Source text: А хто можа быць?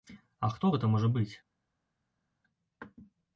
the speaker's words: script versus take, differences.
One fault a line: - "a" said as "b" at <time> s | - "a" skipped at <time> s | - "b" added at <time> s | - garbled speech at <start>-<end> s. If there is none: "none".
- "гэта" added at 0.7 s